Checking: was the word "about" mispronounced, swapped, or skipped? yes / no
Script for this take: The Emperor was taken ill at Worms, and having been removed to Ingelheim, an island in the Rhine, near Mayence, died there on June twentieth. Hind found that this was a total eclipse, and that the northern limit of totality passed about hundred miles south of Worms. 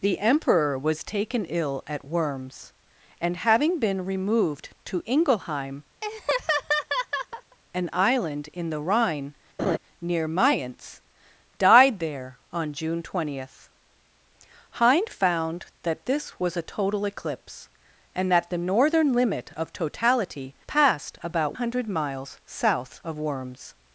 no